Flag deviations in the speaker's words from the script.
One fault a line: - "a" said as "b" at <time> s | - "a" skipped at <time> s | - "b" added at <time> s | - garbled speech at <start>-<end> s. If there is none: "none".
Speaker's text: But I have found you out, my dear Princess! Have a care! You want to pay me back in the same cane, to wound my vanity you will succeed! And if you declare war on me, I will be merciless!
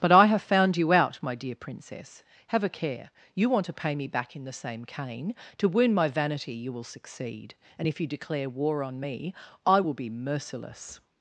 none